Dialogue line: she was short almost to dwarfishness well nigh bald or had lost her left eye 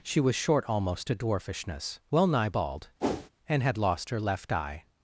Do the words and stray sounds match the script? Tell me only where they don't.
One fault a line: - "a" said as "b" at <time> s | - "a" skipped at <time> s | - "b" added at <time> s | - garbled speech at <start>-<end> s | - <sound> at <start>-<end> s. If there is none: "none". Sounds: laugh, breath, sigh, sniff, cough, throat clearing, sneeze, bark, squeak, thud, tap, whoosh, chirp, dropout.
- whoosh at 3.0-3.3 s
- "or" said as "and" at 3.5 s